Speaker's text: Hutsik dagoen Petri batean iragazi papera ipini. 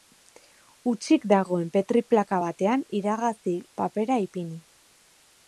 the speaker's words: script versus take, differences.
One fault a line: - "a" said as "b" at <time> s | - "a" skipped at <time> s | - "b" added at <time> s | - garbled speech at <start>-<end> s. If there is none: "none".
- "plaka" added at 2.1 s